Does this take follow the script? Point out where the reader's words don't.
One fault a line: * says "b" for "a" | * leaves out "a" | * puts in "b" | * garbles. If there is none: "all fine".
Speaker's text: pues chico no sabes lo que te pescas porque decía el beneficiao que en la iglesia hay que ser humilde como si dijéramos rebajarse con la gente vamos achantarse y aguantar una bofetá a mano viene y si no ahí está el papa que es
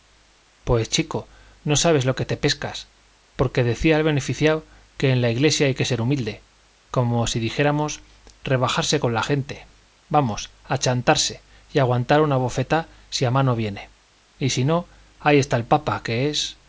* puts in "si"